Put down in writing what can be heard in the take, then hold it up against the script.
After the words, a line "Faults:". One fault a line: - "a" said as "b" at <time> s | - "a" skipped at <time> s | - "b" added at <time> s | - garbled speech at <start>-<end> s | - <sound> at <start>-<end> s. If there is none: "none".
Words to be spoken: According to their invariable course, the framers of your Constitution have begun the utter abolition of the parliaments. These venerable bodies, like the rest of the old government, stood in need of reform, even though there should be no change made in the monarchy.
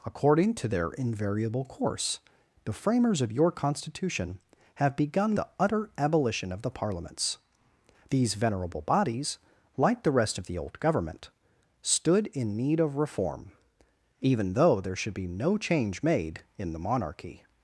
According to their invariable course, the framers of your Constitution have begun the utter abolition of the parliaments. These venerable bodies, like the rest of the old government, stood in need of reform, even though there should be no change made in the monarchy.
Faults:
none